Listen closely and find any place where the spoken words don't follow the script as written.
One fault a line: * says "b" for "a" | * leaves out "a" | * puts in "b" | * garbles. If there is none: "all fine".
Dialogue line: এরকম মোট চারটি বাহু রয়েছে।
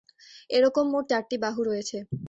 all fine